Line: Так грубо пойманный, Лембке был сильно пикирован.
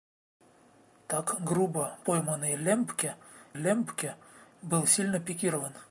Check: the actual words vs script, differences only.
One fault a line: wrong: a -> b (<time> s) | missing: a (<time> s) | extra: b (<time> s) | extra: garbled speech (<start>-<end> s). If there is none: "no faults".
extra: Лембке (3.5 s)